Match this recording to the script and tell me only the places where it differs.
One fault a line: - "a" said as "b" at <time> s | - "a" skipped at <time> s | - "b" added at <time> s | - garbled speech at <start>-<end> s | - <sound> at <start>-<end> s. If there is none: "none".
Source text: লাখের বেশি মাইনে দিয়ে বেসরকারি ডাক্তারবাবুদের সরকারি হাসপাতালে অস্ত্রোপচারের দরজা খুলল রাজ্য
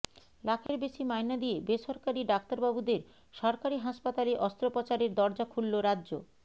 - dropout at 0.7-0.7 s